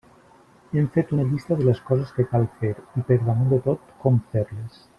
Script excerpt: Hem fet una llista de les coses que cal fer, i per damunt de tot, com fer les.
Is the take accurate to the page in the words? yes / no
yes